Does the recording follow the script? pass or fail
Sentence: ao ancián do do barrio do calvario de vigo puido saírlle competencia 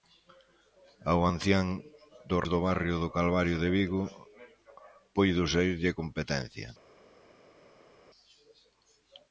pass